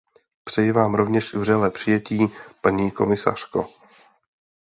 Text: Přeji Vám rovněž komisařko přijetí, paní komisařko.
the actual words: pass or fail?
fail